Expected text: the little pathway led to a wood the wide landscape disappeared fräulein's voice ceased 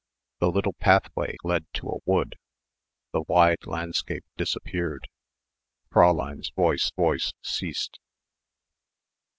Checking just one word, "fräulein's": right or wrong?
right